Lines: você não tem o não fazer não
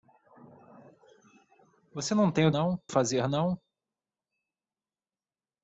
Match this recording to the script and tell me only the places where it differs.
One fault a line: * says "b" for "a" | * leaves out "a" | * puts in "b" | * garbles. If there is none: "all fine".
all fine